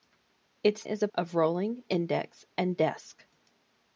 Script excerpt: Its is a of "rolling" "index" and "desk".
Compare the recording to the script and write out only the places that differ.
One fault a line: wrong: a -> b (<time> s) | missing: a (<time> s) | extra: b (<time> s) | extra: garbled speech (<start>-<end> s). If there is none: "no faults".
no faults